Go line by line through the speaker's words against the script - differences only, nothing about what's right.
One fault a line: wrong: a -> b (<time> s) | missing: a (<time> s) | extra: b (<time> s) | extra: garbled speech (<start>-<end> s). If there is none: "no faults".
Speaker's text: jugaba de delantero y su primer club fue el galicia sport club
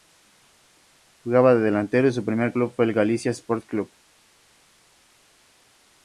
no faults